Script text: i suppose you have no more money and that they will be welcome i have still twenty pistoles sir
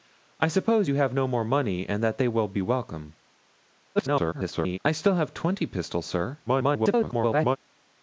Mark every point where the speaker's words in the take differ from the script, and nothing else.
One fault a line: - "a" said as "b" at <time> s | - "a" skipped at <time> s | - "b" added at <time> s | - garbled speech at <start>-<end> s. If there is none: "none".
- garbled speech at 3.9-4.8 s
- garbled speech at 6.5-7.6 s